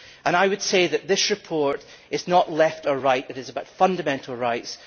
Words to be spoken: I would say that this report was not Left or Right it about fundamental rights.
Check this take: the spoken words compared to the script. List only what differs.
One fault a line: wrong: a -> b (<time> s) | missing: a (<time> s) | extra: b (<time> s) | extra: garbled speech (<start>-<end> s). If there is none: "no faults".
wrong: was -> is (2.1 s)
extra: is (3.4 s)